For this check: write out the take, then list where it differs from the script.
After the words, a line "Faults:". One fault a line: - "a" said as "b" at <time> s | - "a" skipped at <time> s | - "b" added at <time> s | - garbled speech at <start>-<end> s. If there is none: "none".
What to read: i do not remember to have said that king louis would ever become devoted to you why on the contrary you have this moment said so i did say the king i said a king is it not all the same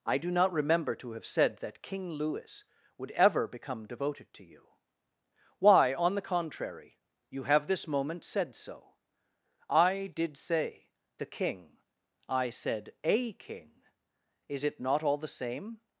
i do not remember to have said that king louis would ever become devoted to you why on the contrary you have this moment said so i did say the king i said a king is it not all the same
Faults:
none